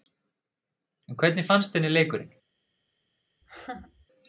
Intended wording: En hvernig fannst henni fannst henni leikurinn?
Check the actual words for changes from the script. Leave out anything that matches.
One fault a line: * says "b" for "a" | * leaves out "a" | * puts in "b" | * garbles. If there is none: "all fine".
* leaves out "fannst henni"